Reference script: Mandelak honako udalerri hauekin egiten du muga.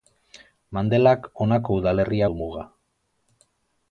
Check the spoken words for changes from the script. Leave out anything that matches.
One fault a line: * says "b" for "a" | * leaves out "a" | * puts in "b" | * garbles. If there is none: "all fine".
* leaves out "hauekin egiten"